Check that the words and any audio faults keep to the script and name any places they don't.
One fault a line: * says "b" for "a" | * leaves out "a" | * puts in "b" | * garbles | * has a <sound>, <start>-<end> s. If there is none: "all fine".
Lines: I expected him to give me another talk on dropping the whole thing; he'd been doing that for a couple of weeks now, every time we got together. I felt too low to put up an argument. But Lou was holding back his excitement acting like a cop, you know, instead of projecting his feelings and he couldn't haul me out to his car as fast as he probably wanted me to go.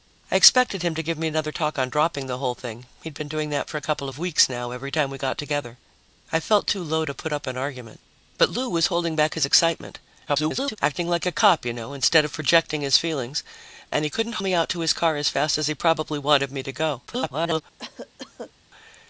* garbles
* leaves out "haul"
* garbles
* has a cough, 17.8-18.5 s